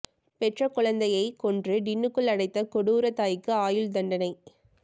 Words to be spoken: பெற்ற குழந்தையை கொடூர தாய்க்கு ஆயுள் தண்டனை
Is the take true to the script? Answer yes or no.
no